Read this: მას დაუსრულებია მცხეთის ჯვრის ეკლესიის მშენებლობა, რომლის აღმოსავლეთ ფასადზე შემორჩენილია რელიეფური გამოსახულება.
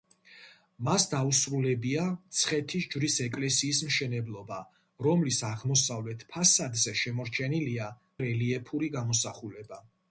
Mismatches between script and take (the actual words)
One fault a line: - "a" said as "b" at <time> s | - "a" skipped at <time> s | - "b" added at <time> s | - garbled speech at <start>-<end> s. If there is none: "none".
none